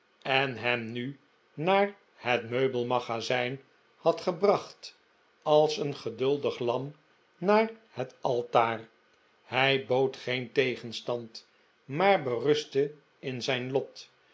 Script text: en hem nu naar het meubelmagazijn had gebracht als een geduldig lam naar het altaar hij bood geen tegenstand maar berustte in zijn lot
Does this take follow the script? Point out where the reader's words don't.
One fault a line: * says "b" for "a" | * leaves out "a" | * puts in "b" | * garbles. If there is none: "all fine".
all fine